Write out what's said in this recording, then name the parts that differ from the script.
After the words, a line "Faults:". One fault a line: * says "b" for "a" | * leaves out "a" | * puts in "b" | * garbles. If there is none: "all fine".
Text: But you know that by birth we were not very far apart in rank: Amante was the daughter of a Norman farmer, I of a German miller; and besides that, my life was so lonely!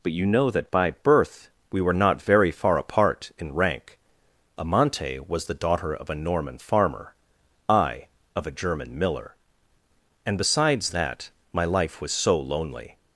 But you know that by birth we were not very far apart in rank: Amante was the daughter of a Norman farmer, I of a German miller; and besides that, my life was so lonely!
Faults:
all fine